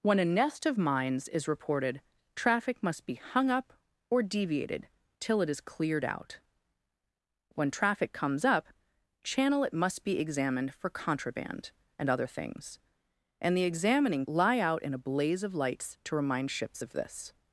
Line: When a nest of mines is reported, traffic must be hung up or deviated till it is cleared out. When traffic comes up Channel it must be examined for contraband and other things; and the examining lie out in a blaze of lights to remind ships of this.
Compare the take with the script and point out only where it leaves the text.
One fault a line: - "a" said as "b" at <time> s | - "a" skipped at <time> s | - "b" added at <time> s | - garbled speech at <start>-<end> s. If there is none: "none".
none